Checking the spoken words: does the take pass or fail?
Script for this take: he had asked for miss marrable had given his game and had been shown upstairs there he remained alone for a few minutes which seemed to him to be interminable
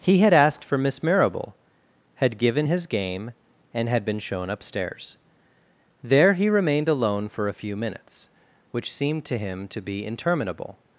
pass